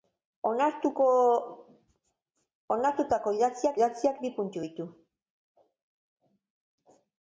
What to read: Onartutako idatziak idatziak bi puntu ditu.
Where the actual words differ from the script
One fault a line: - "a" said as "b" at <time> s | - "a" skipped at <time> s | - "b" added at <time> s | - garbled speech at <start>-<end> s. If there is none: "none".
none